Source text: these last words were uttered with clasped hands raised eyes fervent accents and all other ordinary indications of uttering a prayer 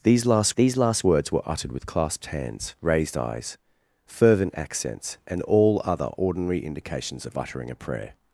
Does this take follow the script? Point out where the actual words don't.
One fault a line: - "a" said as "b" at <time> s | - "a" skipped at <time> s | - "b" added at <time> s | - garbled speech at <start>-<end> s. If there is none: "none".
- "these last" added at 0.6 s